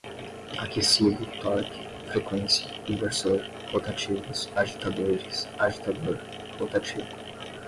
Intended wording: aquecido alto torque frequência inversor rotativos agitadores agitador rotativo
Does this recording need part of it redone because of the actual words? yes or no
yes